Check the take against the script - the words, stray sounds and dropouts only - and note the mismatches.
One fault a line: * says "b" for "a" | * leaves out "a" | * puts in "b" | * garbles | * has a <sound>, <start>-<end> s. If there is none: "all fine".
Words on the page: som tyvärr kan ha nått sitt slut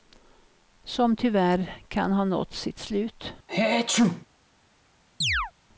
* has a sneeze, 3.5-4.3 s
* has a chirp, 5.2-5.5 s